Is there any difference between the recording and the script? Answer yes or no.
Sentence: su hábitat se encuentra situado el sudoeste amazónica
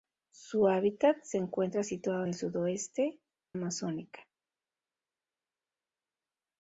no